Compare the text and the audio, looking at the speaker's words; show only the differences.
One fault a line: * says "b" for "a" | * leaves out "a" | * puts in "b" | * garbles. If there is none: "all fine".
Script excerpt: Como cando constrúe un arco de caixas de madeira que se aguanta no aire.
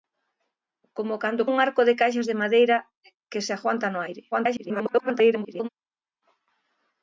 * leaves out "constrúe"
* garbles